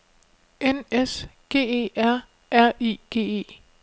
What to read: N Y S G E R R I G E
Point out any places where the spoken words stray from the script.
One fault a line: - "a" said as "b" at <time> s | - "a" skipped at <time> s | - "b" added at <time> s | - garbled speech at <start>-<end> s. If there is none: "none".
- "Y" skipped at 0.8 s